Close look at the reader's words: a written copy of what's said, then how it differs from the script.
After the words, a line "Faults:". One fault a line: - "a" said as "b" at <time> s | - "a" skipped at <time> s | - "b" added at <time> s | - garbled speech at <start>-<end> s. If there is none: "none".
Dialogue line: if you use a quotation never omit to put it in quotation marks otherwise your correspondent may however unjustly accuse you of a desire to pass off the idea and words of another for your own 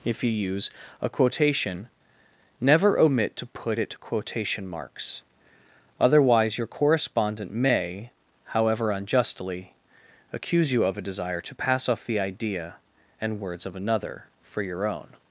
if you use a quotation never omit to put it quotation marks otherwise your correspondent may however unjustly accuse you of a desire to pass off the idea and words of another for your own
Faults:
- "in" skipped at 4.0 s